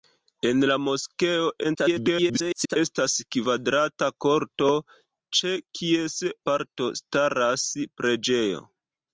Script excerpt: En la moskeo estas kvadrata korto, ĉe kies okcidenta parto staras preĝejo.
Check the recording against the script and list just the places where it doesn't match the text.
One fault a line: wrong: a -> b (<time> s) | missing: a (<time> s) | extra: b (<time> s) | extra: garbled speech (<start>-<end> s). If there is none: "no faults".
extra: garbled speech (1.6-2.8 s)
missing: okcidenta (6.2 s)